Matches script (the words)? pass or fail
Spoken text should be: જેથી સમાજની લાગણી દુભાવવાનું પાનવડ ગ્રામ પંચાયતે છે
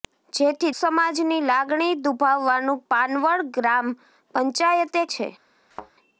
pass